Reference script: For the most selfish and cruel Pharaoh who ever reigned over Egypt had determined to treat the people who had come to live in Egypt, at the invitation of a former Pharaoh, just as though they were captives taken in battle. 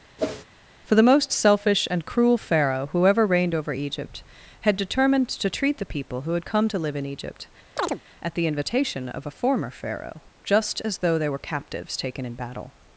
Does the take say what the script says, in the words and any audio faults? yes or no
no